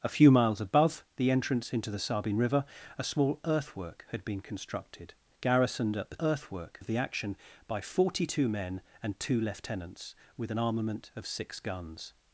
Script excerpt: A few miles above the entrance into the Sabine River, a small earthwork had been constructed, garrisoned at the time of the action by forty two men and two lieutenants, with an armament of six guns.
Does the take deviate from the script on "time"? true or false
true